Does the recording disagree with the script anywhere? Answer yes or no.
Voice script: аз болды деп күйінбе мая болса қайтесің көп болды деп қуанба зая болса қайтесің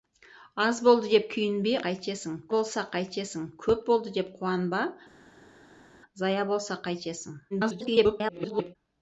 yes